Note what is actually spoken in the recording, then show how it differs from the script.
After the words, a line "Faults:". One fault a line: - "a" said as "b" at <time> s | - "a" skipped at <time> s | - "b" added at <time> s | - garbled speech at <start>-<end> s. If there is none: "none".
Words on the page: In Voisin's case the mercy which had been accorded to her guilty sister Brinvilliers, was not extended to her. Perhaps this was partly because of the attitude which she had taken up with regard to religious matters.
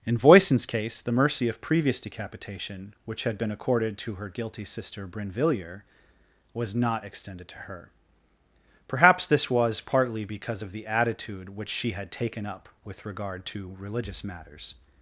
In Voisin's case the mercy of previous decapitation, which had been accorded to her guilty sister Brinvilliers, was not extended to her. Perhaps this was partly because of the attitude which she had taken up with regard to religious matters.
Faults:
- "of previous decapitation" added at 1.5 s